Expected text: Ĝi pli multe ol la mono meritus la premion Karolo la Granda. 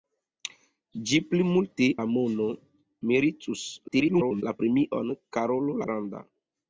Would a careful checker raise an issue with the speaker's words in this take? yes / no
yes